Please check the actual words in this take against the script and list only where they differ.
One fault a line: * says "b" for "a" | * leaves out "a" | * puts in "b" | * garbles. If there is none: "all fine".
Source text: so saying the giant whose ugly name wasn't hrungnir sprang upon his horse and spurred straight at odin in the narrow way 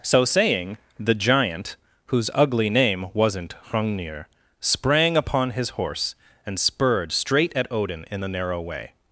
all fine